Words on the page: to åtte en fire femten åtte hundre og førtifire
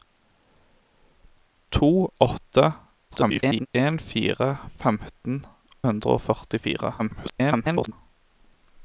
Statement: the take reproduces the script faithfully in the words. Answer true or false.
false